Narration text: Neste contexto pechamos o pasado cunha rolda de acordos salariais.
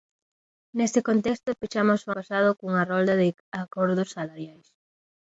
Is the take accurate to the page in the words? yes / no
yes